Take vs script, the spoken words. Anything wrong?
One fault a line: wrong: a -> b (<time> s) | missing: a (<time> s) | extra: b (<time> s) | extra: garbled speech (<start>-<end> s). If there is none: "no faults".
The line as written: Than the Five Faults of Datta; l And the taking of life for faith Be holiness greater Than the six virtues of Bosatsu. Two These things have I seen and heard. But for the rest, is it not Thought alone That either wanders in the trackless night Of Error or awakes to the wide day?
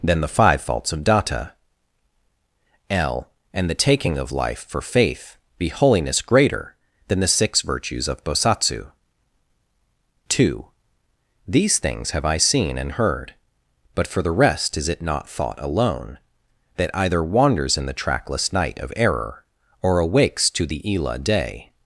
wrong: wide -> ila (20.9 s)